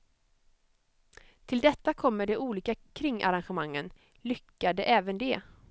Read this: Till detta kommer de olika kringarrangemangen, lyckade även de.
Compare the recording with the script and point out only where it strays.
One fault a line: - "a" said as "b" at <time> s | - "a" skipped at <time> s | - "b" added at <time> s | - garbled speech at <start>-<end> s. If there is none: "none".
none